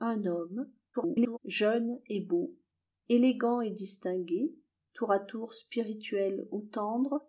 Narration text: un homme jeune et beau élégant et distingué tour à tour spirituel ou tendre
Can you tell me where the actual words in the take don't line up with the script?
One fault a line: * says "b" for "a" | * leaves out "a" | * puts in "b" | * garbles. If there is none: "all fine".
* garbles